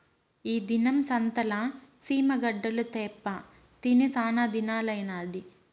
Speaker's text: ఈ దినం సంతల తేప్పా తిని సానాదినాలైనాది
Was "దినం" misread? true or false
false